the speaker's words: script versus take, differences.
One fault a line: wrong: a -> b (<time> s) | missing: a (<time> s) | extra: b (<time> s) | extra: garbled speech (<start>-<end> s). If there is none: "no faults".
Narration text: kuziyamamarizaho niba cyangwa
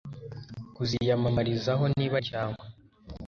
no faults